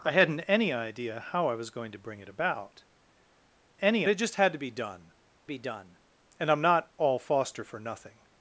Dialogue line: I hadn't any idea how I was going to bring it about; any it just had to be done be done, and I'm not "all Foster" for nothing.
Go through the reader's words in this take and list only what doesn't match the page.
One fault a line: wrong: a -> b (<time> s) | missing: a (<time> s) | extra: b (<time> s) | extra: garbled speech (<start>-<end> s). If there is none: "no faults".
no faults